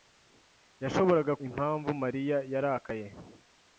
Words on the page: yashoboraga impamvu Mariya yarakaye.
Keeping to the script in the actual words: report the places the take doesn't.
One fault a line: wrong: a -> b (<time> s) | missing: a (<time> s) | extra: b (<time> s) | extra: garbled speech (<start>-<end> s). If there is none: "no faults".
no faults